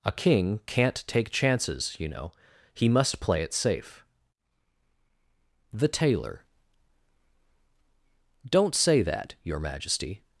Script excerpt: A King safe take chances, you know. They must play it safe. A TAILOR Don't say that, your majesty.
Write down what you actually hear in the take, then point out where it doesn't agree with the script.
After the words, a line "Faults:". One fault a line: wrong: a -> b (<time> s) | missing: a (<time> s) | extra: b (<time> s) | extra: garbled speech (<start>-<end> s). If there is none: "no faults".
A King can't take chances, you know. He must play it safe. THE TAILOR Don't say that, your majesty.
Faults:
wrong: safe -> can't (0.7 s)
wrong: They -> He (2.7 s)
wrong: A -> THE (5.7 s)